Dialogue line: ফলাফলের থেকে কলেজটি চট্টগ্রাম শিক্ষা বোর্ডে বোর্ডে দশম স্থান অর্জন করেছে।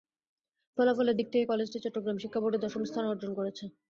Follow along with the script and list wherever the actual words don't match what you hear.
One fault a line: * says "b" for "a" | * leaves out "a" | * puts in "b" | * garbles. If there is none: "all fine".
* puts in "দিক"
* leaves out "বোর্ডে"